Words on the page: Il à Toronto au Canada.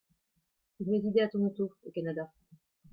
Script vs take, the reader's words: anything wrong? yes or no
yes